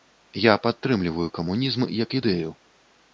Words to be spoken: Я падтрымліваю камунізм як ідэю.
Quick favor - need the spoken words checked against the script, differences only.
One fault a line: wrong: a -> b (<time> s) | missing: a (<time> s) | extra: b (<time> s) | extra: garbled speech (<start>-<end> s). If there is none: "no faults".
no faults